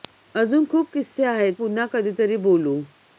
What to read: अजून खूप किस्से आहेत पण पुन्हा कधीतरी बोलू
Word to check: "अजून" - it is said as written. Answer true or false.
true